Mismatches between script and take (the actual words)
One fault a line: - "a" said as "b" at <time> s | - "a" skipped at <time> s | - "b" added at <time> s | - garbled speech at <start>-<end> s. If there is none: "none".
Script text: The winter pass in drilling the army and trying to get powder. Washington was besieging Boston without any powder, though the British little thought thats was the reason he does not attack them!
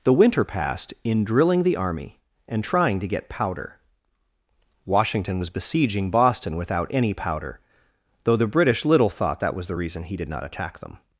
- "pass" said as "passed" at 0.4 s
- "thats" said as "that" at 9.4 s
- "does" said as "did" at 10.2 s